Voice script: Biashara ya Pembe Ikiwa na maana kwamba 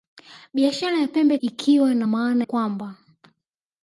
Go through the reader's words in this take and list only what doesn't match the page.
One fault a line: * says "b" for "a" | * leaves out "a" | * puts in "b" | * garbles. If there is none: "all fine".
all fine